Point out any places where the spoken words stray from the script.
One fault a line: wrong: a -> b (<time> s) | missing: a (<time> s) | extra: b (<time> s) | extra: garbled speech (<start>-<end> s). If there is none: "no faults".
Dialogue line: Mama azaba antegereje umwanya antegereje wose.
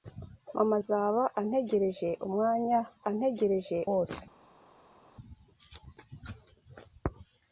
no faults